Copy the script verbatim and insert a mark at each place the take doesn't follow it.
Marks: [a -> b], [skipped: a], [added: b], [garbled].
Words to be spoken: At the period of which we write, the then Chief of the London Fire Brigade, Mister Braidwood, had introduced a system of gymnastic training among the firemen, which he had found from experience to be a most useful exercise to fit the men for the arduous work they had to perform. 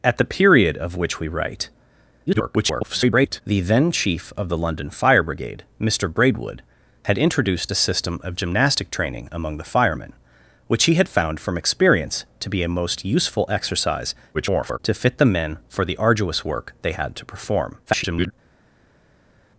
At the period of which we write, [garbled] the then Chief of the London Fire Brigade, Mister Braidwood, had introduced a system of gymnastic training among the firemen, which he had found from experience to be a most useful exercise [garbled] to fit the men for the arduous work they had to perform. [garbled]